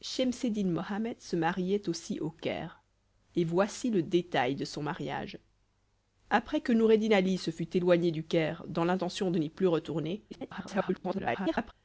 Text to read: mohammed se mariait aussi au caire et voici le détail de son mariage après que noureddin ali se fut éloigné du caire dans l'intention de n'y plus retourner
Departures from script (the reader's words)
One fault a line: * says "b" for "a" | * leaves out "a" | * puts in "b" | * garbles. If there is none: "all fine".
* garbles